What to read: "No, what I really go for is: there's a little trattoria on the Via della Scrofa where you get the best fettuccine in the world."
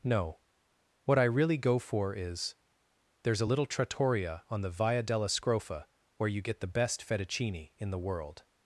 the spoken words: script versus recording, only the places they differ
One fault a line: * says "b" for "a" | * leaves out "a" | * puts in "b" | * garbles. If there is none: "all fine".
all fine